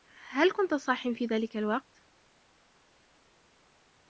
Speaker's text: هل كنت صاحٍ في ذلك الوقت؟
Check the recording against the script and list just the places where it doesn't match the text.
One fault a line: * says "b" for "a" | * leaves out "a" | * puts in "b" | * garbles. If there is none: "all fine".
all fine